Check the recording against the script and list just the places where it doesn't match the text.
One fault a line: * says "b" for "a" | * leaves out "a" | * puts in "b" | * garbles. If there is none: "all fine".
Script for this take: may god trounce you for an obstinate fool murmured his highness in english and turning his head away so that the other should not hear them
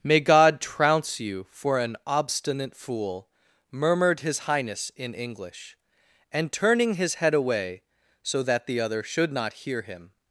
* says "him" for "them"